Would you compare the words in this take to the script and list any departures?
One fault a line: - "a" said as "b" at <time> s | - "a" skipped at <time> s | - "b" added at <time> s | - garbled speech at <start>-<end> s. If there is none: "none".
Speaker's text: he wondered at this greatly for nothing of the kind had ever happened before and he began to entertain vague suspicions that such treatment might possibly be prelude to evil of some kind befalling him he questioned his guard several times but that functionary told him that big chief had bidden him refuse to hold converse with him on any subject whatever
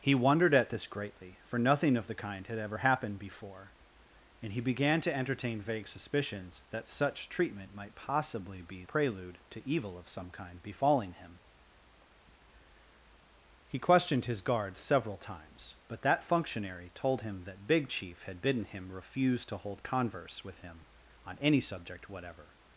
none